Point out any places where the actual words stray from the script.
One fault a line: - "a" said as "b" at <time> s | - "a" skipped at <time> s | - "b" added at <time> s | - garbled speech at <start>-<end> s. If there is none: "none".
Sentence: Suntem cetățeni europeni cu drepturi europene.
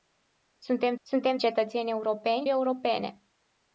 - "suntem" added at 1.0 s
- "cu drepturi" skipped at 2.5 s